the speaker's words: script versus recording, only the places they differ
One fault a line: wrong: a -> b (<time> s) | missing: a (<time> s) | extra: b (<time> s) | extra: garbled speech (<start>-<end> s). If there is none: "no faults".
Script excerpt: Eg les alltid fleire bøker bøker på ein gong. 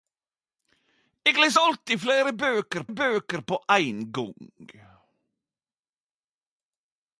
no faults